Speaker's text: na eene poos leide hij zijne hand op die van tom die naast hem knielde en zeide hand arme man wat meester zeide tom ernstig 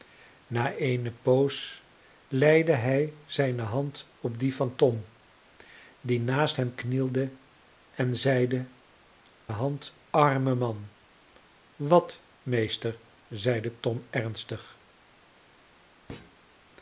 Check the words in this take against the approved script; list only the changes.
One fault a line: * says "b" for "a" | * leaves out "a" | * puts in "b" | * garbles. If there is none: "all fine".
all fine